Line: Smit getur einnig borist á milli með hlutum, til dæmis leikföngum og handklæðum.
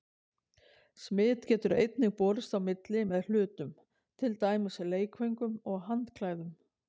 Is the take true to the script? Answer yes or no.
yes